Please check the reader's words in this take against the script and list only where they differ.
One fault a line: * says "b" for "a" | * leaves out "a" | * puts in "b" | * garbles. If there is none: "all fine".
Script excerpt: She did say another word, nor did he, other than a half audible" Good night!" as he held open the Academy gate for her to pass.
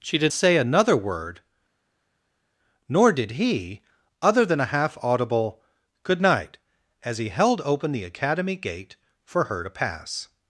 all fine